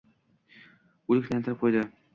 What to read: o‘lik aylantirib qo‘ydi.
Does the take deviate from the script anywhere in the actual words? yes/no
no